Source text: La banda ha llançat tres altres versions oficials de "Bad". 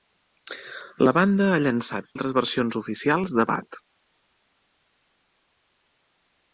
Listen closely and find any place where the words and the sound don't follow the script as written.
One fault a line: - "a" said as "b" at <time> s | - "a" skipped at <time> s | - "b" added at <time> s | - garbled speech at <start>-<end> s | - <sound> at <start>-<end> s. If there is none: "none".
- "tres" skipped at 2.1 s